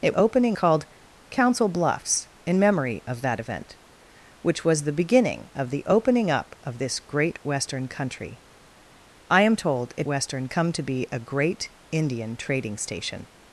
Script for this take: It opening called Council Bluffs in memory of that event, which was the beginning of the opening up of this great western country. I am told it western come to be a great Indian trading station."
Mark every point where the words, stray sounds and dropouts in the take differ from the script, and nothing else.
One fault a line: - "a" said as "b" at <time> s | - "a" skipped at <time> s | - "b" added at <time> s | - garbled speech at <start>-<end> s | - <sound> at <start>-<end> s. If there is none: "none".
none